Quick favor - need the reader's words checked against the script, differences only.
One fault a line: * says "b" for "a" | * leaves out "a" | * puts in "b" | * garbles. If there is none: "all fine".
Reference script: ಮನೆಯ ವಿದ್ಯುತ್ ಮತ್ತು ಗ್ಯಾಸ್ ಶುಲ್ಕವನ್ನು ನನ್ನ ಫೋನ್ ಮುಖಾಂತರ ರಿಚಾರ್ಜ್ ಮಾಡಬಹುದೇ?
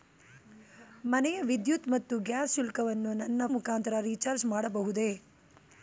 * leaves out "ಫೋನ್"